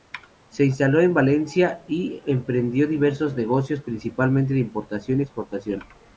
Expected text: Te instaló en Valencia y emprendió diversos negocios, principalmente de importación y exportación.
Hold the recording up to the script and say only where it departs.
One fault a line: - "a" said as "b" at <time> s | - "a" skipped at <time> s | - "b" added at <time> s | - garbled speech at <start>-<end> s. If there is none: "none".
- "Te" said as "Se" at 0.5 s